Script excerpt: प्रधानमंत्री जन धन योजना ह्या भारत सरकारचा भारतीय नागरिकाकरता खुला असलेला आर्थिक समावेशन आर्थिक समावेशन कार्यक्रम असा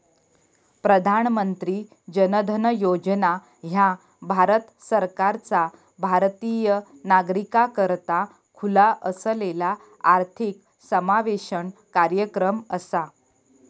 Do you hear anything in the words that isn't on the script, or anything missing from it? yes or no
yes